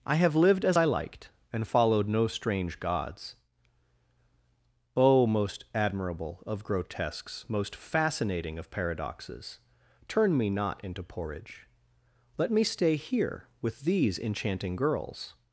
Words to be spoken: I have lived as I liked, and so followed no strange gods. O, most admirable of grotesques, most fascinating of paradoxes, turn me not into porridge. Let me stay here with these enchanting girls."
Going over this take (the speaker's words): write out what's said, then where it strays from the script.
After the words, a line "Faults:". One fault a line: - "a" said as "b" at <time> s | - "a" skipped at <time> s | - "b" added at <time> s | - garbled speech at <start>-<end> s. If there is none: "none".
I have lived as I liked, and followed no strange gods. O, most admirable of grotesques, most fascinating of paradoxes, turn me not into porridge. Let me stay here with these enchanting girls."
Faults:
- "so" skipped at 1.7 s